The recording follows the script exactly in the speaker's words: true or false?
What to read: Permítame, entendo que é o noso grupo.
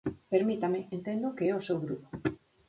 false